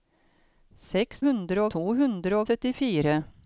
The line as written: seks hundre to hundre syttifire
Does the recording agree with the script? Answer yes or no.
yes